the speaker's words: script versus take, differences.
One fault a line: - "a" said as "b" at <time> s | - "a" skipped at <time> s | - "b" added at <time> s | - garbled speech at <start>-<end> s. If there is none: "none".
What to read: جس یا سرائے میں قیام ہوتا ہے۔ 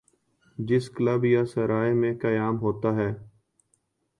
- "کلب" added at 0.9 s